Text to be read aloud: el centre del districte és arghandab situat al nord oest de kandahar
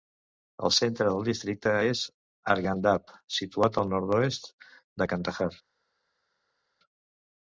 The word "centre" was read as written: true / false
true